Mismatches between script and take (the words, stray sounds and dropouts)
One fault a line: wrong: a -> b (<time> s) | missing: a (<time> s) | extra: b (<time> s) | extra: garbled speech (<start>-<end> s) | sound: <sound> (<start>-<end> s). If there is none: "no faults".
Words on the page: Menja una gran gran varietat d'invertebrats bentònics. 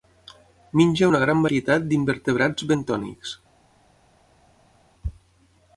missing: gran (1.4 s)